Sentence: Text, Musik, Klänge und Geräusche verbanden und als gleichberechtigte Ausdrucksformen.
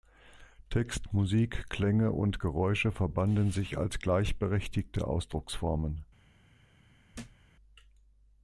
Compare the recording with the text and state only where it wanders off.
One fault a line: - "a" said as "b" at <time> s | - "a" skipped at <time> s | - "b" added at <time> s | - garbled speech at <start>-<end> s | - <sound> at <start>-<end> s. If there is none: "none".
- "und" said as "sich" at 3.5 s
- thud at 7.1-7.4 s